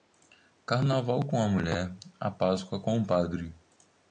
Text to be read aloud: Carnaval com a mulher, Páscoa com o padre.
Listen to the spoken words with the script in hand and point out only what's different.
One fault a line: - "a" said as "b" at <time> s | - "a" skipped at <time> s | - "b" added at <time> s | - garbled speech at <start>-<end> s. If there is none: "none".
- "a" added at 2.2 s